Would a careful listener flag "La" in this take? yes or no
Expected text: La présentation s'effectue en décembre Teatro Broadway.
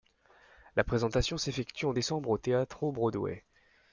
no